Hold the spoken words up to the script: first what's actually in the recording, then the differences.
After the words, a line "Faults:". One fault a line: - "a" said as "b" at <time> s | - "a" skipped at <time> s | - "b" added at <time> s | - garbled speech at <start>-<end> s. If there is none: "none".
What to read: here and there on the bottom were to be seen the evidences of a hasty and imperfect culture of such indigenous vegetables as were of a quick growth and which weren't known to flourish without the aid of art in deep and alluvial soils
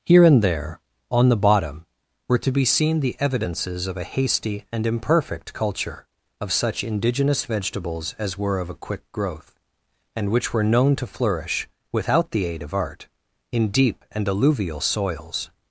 here and there on the bottom were to be seen the evidences of a hasty and imperfect culture of such indigenous vegetables as were of a quick growth and which were known to flourish without the aid of art in deep and alluvial soils
Faults:
- "weren't" said as "were" at 10.5 s